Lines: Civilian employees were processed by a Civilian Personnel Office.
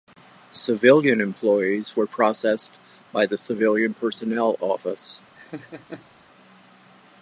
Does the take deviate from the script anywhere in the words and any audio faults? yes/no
yes